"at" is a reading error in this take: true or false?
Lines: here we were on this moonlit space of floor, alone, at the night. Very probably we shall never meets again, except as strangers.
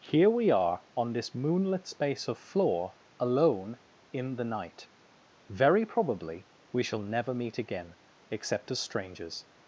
true